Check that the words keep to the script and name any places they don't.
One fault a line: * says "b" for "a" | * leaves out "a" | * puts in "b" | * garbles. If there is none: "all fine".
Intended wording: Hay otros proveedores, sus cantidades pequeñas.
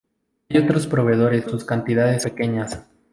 all fine